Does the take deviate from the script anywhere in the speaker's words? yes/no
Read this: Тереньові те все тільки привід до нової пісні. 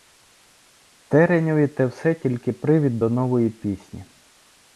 no